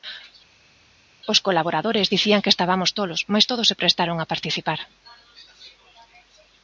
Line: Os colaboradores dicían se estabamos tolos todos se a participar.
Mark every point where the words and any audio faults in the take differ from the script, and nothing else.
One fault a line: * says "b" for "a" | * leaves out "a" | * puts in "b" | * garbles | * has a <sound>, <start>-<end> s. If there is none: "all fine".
* says "que" for "se"
* puts in "mais"
* puts in "prestaron"